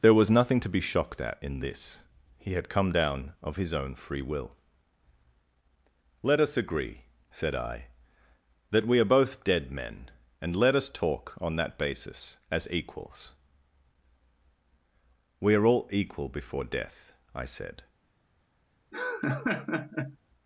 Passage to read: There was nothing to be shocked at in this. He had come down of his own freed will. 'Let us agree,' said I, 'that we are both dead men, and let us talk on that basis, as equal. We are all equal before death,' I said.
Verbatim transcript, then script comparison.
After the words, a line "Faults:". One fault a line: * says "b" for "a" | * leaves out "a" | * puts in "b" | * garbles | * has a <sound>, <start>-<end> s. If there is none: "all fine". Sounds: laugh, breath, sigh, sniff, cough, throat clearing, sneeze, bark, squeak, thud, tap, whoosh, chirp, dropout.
There was nothing to be shocked at in this. He had come down of his own free will. 'Let us agree,' said I, 'that we are both dead men, and let us talk on that basis, as equals. We are all equal before death,' I said.
Faults:
* says "free" for "freed"
* says "equals" for "equal"
* has a laugh, 18.9-20.2 s